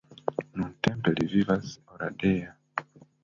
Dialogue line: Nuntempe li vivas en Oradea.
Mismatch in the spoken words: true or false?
true